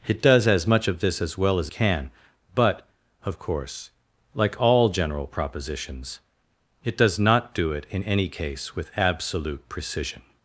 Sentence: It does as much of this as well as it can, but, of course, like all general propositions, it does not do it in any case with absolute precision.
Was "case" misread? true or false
false